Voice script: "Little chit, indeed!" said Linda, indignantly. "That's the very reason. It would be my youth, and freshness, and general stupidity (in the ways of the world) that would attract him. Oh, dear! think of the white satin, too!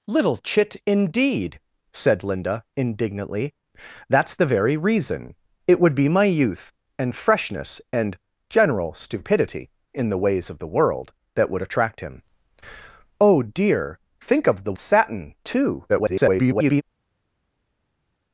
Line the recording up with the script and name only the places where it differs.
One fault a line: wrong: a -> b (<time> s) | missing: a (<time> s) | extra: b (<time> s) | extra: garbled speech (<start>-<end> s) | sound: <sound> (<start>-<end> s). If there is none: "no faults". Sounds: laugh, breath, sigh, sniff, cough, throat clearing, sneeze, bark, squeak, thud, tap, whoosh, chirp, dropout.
missing: white (14.7 s)
extra: garbled speech (15.9-16.8 s)